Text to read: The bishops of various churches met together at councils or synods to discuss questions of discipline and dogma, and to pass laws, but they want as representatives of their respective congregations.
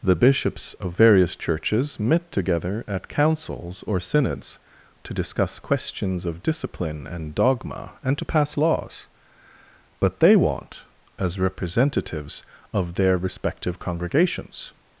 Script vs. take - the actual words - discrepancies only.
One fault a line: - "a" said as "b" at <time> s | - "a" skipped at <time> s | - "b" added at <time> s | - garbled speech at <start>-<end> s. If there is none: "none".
none